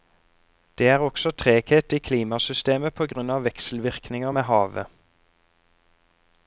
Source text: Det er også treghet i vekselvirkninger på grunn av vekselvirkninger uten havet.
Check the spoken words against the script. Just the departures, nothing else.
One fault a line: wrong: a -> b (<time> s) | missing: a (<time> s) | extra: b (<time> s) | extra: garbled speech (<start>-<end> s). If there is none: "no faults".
wrong: vekselvirkninger -> klimasystemet (2.1 s)
wrong: uten -> med (4.4 s)